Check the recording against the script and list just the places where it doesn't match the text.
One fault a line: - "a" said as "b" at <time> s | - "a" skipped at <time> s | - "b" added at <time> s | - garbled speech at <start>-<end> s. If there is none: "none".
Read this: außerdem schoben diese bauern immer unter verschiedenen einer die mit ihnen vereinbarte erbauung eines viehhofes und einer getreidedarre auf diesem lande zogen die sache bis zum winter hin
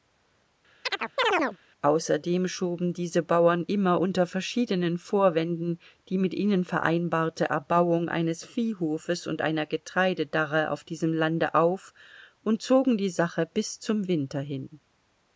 - "einer" said as "vorwänden" at 5.0 s
- "auf und" added at 11.5 s